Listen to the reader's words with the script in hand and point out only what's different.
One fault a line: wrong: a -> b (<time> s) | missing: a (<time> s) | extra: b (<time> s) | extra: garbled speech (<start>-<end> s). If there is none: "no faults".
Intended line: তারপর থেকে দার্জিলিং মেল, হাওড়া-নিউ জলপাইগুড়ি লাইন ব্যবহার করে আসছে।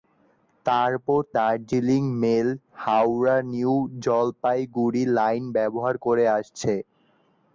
missing: থেকে (1.2 s)